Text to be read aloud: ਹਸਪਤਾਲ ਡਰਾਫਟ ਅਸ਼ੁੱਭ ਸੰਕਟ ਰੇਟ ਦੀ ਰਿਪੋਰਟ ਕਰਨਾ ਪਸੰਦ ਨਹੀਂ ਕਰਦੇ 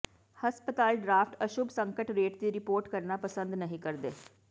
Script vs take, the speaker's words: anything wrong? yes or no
no